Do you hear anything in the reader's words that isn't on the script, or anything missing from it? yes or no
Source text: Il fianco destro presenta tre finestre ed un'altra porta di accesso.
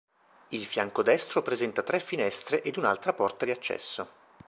no